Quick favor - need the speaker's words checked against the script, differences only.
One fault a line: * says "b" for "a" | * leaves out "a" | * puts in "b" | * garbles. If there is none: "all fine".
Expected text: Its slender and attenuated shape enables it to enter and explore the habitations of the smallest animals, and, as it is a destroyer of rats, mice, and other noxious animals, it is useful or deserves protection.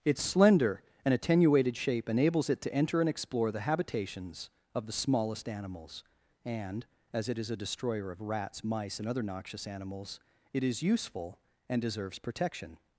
* says "and" for "or"